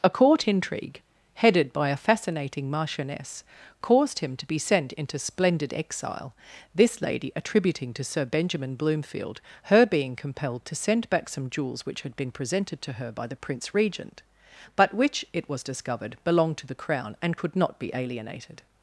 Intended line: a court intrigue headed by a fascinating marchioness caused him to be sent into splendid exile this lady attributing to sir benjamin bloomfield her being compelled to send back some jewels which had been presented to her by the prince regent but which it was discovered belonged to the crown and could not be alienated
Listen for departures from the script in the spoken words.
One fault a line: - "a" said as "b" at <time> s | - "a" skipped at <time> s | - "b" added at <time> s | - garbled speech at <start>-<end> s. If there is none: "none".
none